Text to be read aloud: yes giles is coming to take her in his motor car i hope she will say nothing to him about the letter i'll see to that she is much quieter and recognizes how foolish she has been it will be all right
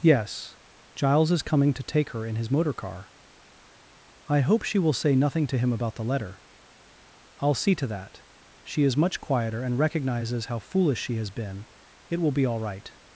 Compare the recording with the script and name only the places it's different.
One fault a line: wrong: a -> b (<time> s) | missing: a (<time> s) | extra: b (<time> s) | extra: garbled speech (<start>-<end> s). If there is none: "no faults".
no faults